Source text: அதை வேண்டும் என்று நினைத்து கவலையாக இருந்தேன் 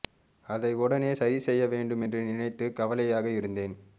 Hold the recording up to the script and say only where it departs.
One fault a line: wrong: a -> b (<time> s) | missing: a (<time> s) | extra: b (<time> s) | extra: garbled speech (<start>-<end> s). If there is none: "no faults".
extra: உடனே சரி செய்ய (0.8 s)